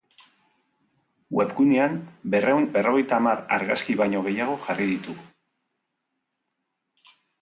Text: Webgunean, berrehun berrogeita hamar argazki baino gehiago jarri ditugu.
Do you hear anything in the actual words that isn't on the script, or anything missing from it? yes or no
no